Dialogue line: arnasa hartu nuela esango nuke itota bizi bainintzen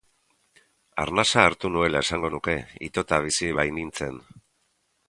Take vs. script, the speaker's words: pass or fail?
pass